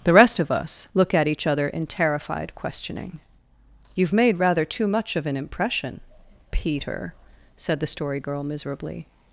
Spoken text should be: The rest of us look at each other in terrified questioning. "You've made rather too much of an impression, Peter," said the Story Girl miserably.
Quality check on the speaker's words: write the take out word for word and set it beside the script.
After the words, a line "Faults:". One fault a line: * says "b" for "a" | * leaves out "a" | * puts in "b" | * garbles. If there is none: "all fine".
The rest of us look at each other in terrified questioning. "You've made rather too much of an impression, Peter," said the Story Girl miserably.
Faults:
all fine